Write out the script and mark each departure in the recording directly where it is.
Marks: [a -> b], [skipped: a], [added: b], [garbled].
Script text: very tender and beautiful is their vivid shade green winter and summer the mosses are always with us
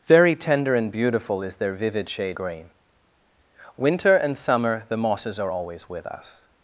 very tender and beautiful is their vivid shade green winter and summer the mosses are always with us